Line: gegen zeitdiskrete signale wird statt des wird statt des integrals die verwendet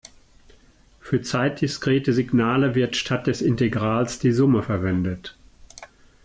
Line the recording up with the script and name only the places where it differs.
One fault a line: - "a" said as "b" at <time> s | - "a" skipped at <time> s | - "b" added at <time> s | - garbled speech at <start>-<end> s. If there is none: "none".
- "gegen" said as "für" at 1.0 s
- "wird statt des" skipped at 3.4 s
- "summe" added at 4.3 s